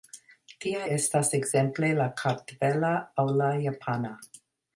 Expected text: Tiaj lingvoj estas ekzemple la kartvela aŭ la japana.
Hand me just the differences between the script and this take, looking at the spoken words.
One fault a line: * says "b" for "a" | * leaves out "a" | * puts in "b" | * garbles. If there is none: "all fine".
* leaves out "lingvoj"